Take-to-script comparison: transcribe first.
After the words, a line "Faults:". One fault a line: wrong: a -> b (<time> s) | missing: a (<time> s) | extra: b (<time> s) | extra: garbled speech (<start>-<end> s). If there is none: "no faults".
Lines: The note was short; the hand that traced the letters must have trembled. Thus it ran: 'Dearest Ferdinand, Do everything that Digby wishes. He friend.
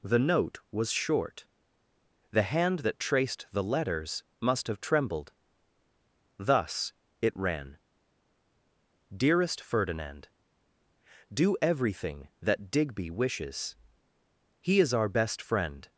The note was short; the hand that traced the letters must have trembled. Thus it ran: 'Dearest Ferdinand, Do everything that Digby wishes. He is our best friend.
Faults:
extra: is our best (14.8 s)